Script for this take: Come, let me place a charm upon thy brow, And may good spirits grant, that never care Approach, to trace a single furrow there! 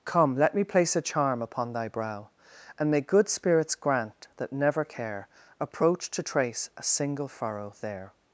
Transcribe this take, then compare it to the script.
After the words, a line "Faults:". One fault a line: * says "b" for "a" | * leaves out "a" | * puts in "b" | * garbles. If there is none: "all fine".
Come, let me place a charm upon thy brow, And may good spirits grant, that never care Approach, to trace a single furrow there!
Faults:
all fine